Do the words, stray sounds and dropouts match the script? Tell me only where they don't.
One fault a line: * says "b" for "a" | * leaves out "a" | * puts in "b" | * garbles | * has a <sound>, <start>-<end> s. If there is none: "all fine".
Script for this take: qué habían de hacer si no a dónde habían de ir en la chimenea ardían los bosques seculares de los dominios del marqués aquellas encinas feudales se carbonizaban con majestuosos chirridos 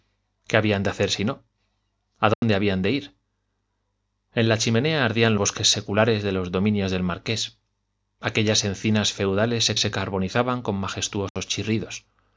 * has a dropout, 2.3-2.4 s
* leaves out "los"
* puts in "se"
* has a dropout, 11.3-11.4 s